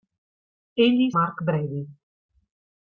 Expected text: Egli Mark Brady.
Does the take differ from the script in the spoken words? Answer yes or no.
no